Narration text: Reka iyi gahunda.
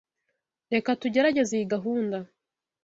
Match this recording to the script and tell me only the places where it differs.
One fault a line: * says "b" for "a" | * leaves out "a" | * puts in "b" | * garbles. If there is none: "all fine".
* puts in "tugerageze"